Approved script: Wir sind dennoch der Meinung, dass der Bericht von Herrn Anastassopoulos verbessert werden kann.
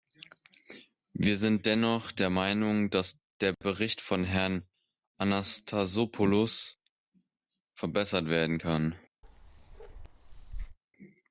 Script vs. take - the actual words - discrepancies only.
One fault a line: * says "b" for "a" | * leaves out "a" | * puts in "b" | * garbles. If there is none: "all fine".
all fine